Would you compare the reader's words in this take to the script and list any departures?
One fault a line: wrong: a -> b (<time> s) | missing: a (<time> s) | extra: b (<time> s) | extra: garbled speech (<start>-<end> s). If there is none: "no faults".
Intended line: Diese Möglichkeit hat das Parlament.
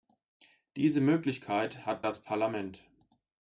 no faults